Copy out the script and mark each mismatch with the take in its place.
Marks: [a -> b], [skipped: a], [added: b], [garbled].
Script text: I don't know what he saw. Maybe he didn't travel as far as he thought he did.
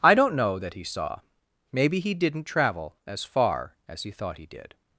I don't know [what -> that] he saw. Maybe he didn't travel as far as he thought he did.